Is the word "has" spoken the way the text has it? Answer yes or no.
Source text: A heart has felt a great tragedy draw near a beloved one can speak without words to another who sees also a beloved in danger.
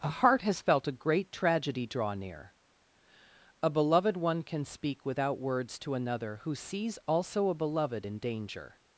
yes